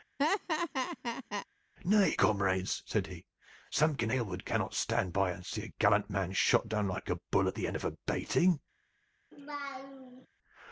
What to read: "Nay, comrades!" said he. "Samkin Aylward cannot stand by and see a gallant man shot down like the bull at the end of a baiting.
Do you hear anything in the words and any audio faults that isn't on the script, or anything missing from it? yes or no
yes